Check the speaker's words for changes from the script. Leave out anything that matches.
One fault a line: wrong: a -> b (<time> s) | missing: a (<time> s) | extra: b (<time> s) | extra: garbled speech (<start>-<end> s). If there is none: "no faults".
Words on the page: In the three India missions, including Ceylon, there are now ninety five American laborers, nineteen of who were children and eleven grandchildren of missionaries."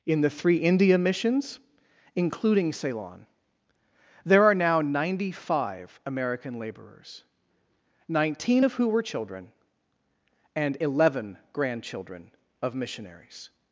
no faults